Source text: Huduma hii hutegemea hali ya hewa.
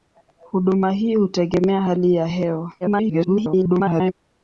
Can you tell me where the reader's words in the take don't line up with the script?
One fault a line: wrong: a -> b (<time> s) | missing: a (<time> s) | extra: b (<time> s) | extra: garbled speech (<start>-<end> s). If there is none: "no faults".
extra: garbled speech (2.8-4.1 s)